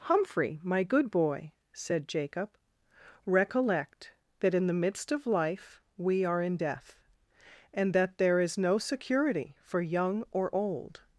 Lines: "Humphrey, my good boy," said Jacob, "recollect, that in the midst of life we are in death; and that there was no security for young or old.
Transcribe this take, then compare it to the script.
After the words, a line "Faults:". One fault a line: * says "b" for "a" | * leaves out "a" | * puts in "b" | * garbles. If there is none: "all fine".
"Humphrey, my good boy," said Jacob, "recollect, that in the midst of life we are in death; and that there is no security for young or old.
Faults:
* says "is" for "was"